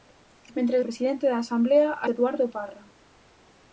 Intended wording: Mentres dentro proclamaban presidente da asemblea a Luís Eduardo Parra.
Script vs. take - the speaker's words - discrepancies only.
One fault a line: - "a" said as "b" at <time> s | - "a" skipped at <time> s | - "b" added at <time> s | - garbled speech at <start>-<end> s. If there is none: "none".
- "dentro proclamaban" skipped at 0.8 s
- "Luís" skipped at 2.1 s